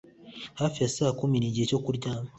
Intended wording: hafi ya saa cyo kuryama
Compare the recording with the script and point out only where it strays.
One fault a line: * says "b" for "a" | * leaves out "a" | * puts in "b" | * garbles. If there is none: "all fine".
* puts in "kumi nigihe"